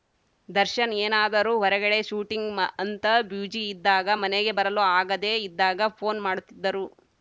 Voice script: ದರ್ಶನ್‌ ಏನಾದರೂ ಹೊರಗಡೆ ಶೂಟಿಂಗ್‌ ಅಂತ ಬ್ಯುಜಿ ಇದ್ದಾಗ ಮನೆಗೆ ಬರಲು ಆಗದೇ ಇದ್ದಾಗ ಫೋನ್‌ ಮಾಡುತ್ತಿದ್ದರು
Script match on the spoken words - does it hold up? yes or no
yes